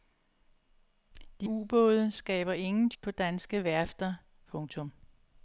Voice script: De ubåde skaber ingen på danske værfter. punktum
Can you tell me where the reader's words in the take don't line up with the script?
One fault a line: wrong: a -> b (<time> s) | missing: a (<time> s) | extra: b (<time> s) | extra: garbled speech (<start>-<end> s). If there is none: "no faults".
no faults